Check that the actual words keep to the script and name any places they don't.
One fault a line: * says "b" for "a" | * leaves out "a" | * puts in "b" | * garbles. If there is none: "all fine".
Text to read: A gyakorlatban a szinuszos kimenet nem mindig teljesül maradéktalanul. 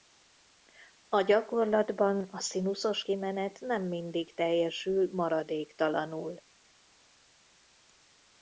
all fine